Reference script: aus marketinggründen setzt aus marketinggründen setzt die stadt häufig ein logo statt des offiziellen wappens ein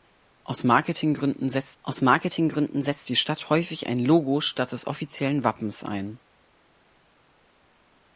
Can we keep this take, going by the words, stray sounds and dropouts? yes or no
yes